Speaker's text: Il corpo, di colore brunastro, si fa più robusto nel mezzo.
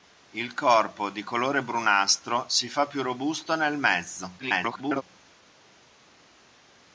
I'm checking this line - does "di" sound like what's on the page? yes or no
yes